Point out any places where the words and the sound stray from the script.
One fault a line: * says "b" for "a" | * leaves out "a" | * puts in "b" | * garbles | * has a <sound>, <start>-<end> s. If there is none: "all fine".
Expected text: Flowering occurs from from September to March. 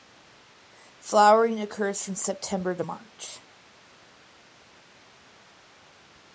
* leaves out "from"